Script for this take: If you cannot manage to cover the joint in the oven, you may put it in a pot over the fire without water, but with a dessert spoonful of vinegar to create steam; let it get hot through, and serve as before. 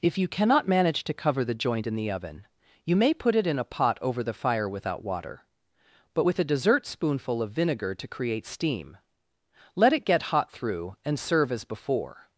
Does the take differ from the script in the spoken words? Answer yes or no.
no